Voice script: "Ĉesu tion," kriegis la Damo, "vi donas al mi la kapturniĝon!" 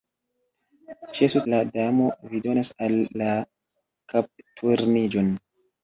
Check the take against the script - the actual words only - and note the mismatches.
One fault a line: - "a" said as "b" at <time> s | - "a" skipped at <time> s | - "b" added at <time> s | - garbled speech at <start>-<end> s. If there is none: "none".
- "tion kriegis" skipped at 1.4 s
- "mi" skipped at 2.9 s